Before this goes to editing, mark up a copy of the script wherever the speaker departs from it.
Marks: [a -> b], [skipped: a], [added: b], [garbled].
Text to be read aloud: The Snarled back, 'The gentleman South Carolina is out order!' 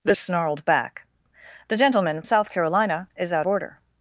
The Snarled back, 'The gentleman South Carolina is out order!'